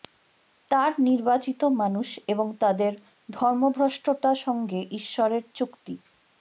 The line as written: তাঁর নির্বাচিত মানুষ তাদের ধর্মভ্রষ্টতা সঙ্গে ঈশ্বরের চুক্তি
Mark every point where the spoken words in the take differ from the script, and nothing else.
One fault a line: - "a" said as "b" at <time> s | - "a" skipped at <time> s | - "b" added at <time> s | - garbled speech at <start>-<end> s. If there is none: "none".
- "এবং" added at 2.3 s